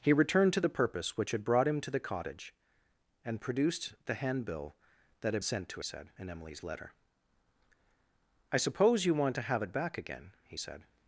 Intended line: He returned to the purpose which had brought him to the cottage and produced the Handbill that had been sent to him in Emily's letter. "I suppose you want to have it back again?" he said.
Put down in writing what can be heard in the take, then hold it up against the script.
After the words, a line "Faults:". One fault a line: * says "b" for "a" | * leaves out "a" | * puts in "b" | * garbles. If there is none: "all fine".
He returned to the purpose which had brought him to the cottage and produced the Handbill that had sent to said in Emily's letter. "I suppose you want to have it back again?" he said.
Faults:
* leaves out "been"
* says "said" for "him"